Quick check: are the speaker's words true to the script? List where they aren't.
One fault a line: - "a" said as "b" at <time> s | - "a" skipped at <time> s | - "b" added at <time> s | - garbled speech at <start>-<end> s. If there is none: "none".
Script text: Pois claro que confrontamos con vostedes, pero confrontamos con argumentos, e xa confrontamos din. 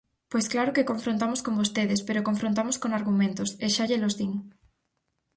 - "confrontamos" said as "llelos" at 3.9 s